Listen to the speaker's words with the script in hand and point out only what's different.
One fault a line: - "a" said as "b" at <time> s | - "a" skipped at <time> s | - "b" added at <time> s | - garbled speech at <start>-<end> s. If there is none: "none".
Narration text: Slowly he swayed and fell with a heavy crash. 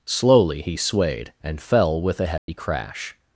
none